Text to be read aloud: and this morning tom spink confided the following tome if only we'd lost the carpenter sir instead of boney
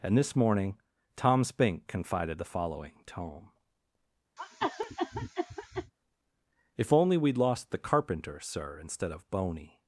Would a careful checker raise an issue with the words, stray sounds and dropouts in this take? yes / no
yes